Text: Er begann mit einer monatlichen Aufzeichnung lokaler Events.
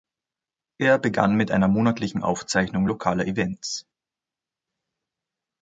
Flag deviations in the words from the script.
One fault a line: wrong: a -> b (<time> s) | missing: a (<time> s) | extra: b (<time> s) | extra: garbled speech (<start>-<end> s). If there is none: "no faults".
no faults